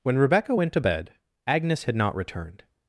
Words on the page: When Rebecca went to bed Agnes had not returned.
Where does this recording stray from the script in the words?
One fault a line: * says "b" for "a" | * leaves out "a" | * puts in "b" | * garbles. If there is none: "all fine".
all fine